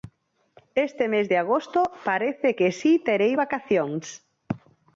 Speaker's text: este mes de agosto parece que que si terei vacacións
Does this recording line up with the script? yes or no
no